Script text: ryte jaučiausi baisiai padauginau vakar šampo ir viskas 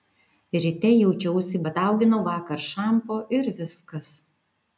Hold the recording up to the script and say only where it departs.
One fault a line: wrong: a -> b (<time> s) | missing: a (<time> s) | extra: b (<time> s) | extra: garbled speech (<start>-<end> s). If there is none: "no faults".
missing: baisiai (1.6 s)